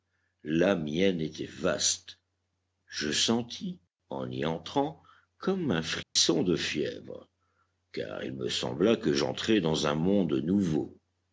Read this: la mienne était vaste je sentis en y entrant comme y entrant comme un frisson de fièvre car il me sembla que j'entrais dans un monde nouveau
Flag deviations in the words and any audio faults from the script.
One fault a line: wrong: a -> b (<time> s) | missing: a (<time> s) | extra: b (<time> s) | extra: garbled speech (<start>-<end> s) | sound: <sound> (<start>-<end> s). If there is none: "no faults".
missing: y entrant comme (5.7 s)
sound: dropout (6.0-6.2 s)